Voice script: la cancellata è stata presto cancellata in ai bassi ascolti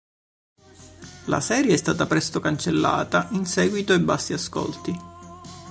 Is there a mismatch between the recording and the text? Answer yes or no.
yes